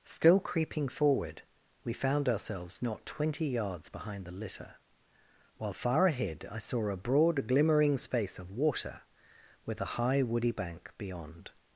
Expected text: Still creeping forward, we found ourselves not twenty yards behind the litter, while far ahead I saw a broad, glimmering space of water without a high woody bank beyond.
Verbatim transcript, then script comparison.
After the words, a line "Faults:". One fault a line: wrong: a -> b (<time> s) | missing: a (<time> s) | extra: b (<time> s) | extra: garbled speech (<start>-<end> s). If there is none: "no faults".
Still creeping forward, we found ourselves not twenty yards behind the litter, while far ahead I saw a broad, glimmering space of water with a high woody bank beyond.
Faults:
wrong: without -> with (9.7 s)